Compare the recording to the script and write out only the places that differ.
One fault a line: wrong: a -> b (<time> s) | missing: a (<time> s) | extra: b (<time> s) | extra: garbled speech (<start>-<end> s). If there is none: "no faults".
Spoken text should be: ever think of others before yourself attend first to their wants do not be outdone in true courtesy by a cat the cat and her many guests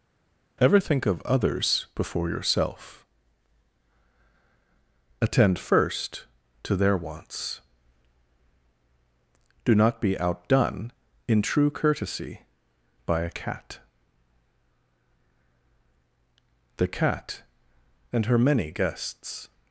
no faults